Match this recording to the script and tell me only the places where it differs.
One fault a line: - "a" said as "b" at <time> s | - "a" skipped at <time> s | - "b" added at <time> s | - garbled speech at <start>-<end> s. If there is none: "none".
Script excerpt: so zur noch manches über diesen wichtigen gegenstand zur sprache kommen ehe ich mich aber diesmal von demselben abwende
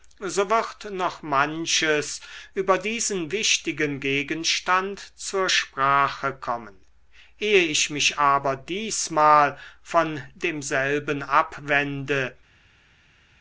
- "zur" said as "wird" at 0.5 s